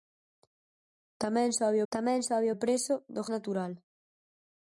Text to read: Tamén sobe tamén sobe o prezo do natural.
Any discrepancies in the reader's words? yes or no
no